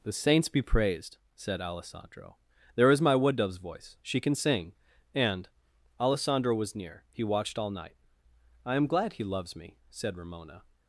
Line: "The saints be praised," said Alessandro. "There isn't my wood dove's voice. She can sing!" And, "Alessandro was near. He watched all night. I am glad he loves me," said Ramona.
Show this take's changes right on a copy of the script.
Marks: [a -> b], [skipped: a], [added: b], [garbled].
"The saints be praised," said Alessandro. "There [isn't -> is] my wood dove's voice. She can sing!" And, "Alessandro was near. He watched all night. I am glad he loves me," said Ramona.